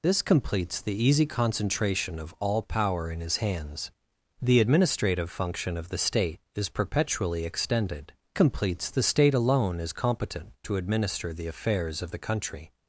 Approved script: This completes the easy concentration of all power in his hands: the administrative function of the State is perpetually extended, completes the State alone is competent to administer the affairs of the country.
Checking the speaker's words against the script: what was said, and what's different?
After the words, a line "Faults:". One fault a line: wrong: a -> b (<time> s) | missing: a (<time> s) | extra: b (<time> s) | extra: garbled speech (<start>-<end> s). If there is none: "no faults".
This completes the easy concentration of all power in his hands: the administrative function of the State is perpetually extended, completes the State alone is competent to administer the affairs of the country.
Faults:
no faults